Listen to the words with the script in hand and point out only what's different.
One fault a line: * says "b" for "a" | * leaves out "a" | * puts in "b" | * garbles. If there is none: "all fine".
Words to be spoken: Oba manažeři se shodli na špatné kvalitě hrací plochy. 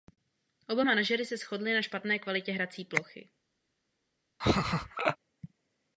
all fine